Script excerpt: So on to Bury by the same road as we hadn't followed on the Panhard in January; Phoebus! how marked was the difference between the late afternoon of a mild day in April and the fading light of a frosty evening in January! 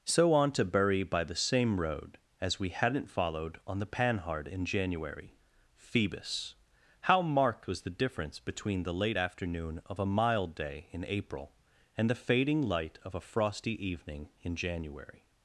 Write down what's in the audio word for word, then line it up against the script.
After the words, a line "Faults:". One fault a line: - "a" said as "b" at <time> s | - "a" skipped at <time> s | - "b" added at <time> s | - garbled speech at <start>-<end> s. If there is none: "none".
So on to Bury by the same road as we hadn't followed on the Panhard in January; Phoebus! how marked was the difference between the late afternoon of a mild day in April and the fading light of a frosty evening in January!
Faults:
none